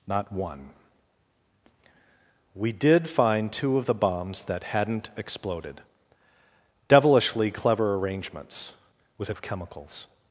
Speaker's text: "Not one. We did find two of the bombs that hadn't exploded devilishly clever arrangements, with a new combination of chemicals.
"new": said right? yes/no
no